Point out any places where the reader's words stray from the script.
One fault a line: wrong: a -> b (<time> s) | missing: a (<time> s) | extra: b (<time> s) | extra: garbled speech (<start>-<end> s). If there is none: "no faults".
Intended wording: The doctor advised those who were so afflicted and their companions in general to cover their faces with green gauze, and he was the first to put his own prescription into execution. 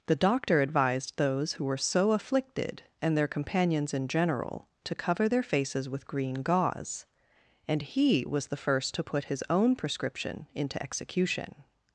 no faults